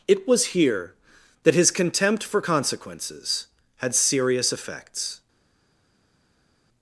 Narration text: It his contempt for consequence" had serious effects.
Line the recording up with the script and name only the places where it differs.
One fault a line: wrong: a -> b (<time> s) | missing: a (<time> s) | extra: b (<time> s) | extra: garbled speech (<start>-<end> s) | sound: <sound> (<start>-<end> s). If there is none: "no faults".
extra: was here that (0.3 s)
wrong: consequence -> consequences (2.4 s)